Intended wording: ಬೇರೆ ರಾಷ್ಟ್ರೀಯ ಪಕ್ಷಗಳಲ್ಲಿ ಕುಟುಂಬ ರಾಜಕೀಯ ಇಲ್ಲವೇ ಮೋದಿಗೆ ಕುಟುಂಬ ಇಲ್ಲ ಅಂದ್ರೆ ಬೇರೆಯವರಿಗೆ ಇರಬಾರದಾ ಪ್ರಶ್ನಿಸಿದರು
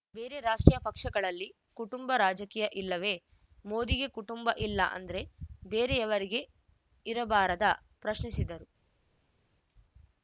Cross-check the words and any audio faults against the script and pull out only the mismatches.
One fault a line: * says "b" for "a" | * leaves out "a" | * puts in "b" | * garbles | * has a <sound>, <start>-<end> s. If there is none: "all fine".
all fine